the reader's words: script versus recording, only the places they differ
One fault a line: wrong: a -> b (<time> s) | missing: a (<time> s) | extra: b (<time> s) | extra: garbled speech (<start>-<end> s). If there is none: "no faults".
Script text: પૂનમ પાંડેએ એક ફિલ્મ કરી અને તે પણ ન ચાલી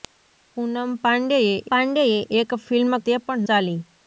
extra: પાંડેએ (1.7 s)
missing: કરી અને (2.9 s)
missing: ન (3.5 s)